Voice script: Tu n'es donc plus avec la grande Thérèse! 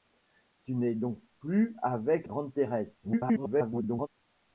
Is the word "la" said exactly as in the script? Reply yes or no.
no